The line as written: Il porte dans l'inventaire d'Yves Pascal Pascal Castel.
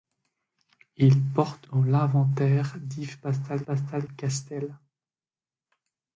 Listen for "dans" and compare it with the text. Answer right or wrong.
right